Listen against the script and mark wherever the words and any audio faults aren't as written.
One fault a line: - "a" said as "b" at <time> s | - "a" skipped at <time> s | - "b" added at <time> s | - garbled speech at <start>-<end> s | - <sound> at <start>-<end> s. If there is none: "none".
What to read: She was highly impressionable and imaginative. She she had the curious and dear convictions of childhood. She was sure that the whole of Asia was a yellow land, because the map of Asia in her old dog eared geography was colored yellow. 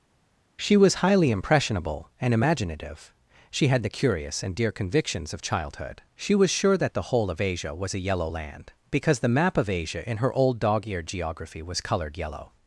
- "she" skipped at 3.7 s